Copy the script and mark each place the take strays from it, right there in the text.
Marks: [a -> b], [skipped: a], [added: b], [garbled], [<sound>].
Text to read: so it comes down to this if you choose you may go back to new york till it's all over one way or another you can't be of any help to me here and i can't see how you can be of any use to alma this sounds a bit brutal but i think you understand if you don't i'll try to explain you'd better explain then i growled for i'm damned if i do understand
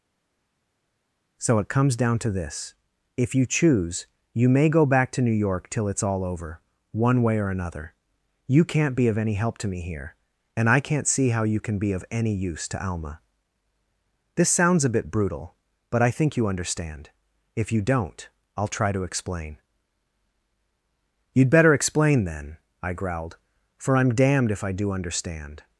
so it comes down to this if you choose you may go back to new york till it's all over one way or another you can't be of any help to me here and i can't see how you can be of any use to alma this sounds a bit brutal but i think you understand if you don't i'll try to explain you'd better explain then i growled for i'm damned if i do understand